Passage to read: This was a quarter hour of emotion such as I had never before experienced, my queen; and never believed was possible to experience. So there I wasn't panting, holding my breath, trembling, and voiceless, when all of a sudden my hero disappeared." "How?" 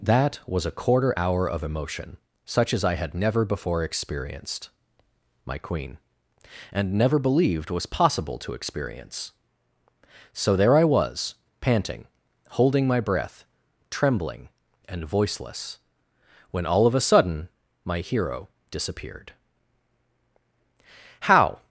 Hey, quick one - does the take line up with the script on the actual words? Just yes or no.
no